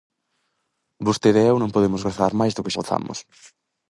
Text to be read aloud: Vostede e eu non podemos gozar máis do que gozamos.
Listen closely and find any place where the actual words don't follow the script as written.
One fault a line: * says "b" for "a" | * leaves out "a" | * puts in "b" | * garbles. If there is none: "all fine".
all fine